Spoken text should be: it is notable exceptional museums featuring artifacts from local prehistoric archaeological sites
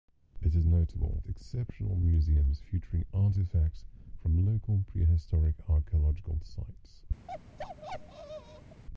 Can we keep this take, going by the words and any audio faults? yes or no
no